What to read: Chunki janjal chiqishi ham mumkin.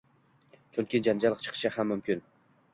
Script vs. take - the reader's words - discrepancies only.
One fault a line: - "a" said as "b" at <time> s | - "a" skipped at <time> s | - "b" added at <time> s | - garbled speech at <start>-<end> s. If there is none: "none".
none